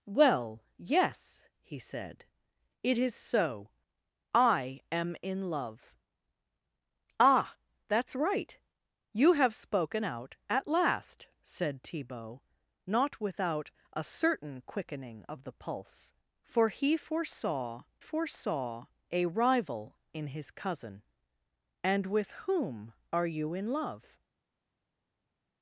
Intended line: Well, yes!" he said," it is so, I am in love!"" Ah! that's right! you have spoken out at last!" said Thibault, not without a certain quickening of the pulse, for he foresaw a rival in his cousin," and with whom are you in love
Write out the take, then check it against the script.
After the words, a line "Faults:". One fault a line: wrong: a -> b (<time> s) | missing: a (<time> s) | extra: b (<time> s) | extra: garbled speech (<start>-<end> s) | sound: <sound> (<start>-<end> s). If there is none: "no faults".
Well, yes!" he said," it is so, I am in love!"" Ah! that's right! you have spoken out at last!" said Thibault, not without a certain quickening of the pulse, for he foresaw foresaw a rival in his cousin," and with whom are you in love
Faults:
extra: foresaw (18.0 s)